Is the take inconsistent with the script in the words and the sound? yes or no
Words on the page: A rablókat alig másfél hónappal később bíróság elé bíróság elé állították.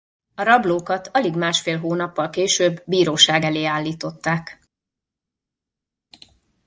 yes